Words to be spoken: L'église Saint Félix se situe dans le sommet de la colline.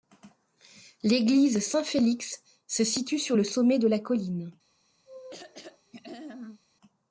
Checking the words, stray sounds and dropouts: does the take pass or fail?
fail